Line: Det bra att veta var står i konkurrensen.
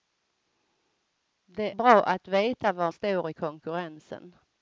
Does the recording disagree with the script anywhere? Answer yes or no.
no